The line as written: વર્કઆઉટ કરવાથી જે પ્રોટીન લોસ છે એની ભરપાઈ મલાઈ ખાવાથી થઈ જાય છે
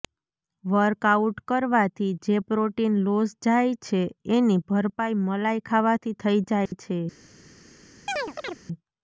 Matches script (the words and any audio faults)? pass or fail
fail